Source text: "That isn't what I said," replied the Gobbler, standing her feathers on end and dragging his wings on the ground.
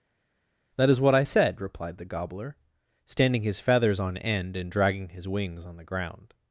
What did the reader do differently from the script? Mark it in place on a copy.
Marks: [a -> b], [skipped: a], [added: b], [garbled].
"That [isn't -> is] what I said," replied the Gobbler, standing [her -> his] feathers on end and dragging his wings on the ground.